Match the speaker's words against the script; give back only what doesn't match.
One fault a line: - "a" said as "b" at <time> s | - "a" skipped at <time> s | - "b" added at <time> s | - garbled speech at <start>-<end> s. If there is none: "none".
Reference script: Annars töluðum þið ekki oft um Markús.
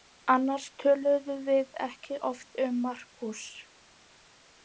- "þið" said as "við" at 1.5 s